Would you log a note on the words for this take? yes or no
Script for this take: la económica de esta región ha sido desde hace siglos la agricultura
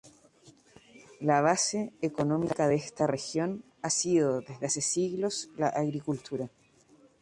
yes